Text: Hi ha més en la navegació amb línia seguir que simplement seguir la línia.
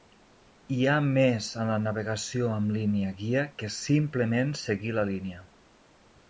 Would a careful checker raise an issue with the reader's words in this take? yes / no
yes